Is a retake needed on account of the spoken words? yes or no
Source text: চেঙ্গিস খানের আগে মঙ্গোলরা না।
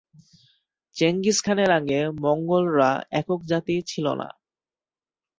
yes